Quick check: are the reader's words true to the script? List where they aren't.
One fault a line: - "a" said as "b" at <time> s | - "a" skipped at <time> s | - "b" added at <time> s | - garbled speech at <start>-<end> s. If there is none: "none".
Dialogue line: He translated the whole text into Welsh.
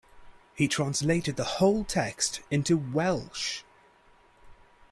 none